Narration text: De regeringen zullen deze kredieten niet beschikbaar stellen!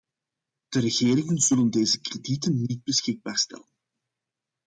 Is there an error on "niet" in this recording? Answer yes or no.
no